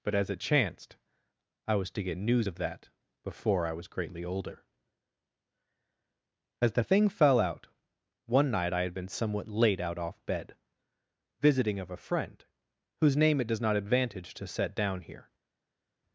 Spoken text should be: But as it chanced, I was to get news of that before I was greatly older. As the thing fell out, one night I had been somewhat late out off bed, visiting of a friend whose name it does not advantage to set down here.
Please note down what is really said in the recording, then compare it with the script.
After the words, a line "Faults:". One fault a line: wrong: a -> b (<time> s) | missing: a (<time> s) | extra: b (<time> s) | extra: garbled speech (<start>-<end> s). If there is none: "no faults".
But as it chanced, I was to get news of that before I was greatly older. As the thing fell out, one night I had been somewhat late out off bed, visiting of a friend whose name it does not advantage to set down here.
Faults:
no faults